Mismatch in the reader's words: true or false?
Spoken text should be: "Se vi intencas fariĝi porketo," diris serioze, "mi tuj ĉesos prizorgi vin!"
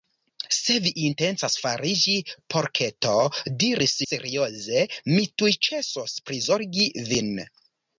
false